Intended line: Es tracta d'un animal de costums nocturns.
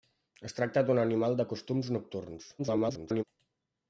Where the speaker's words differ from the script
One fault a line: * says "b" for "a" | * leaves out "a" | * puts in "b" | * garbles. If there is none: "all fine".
* garbles